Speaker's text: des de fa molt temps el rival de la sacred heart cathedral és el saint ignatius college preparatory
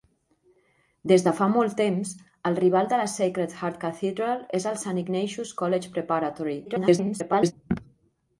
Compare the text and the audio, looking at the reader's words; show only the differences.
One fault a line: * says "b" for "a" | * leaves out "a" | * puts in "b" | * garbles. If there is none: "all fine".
* garbles